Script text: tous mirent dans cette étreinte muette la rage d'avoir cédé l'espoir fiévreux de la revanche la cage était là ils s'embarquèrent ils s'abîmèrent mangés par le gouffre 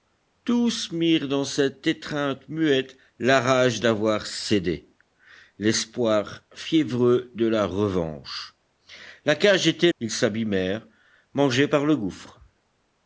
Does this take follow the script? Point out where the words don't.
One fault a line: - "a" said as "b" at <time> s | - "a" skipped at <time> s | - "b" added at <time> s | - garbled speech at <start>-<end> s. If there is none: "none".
- "là ils s'embarquèrent" skipped at 9.9 s